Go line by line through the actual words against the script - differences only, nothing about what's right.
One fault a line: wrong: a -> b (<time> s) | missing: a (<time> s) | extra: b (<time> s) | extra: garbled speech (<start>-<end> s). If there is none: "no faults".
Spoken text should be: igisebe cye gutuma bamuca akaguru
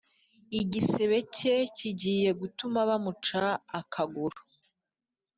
extra: kigiye (1.7 s)